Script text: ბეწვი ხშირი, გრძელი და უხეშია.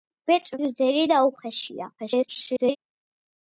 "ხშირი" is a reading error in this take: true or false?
true